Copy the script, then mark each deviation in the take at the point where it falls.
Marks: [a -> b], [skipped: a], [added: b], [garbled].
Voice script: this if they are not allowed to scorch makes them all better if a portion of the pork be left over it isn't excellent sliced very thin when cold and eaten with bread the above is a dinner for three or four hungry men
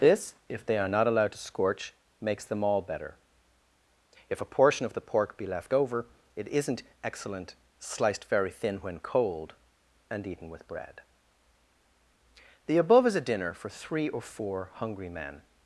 this if they are not allowed to scorch makes them all better if a portion of the pork be left over it isn't excellent sliced very thin when cold and eaten with bread the above is a dinner for three or four hungry men